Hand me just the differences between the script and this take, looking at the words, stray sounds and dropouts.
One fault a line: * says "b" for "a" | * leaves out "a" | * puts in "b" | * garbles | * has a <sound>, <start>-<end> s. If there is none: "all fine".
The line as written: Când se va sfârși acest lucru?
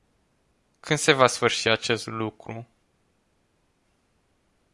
all fine